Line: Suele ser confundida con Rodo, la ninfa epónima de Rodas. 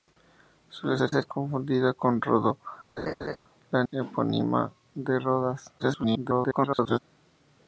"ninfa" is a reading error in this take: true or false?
true